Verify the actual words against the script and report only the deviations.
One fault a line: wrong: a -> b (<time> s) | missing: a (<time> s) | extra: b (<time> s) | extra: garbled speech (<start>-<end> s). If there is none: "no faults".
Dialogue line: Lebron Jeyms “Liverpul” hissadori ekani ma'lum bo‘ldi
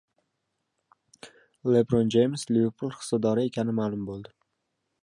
no faults